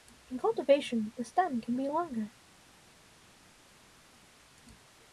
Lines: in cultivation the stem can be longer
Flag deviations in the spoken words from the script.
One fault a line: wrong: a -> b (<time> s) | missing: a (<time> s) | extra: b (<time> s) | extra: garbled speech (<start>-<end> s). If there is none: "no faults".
no faults